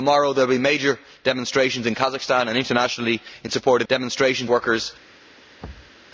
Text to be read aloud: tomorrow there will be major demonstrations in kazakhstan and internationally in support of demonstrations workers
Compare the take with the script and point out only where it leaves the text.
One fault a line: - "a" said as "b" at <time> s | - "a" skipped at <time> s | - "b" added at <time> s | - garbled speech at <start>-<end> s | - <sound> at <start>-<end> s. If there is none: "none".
- thud at 5.6-6.0 s